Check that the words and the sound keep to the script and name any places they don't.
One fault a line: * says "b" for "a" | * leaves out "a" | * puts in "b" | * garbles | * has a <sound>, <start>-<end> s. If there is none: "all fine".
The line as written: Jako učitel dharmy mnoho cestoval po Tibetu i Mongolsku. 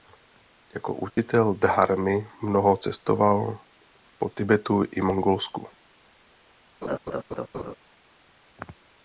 * has a dropout, 1.1-1.2 s
* has a laugh, 6.8-7.8 s